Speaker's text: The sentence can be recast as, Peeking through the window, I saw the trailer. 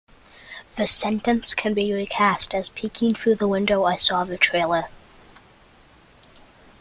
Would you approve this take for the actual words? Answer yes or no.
yes